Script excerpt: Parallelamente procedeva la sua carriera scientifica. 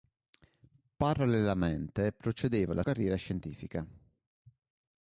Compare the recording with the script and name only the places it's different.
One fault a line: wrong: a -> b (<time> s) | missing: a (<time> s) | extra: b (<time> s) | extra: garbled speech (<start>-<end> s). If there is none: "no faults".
missing: sua (2.8 s)